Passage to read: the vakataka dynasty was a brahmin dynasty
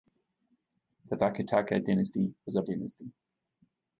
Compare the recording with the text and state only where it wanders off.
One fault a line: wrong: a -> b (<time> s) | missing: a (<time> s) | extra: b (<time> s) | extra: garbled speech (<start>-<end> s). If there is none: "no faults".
missing: brahmin (2.6 s)